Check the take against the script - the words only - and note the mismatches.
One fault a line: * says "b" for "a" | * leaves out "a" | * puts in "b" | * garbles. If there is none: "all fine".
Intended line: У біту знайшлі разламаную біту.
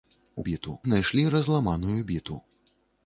all fine